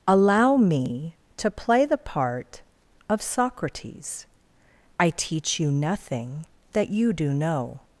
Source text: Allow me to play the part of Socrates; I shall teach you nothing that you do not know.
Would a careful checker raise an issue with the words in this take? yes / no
yes